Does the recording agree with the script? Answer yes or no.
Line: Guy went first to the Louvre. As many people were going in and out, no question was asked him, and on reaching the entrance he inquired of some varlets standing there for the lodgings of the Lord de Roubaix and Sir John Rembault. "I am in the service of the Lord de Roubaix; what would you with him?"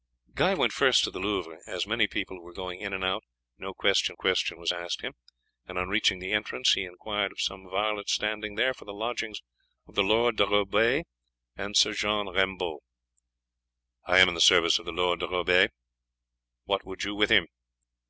no